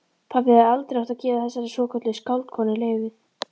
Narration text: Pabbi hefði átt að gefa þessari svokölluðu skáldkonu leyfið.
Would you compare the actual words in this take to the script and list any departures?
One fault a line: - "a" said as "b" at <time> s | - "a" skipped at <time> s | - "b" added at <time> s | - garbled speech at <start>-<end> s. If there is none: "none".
- "aldrei" added at 0.7 s